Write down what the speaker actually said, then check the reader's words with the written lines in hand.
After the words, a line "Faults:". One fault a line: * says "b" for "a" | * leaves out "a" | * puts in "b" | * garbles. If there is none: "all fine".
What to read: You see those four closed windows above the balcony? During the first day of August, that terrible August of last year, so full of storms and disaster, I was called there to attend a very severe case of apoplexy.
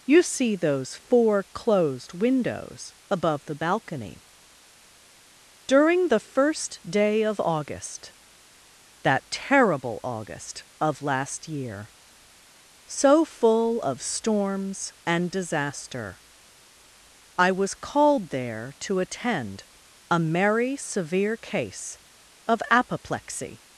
You see those four closed windows above the balcony? During the first day of August, that terrible August of last year, so full of storms and disaster, I was called there to attend a merry severe case of apoplexy.
Faults:
* says "merry" for "very"